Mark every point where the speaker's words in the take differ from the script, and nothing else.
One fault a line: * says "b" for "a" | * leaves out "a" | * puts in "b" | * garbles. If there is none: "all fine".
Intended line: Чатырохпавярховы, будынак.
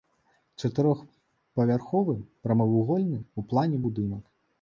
* puts in "прамавугольны ў плане"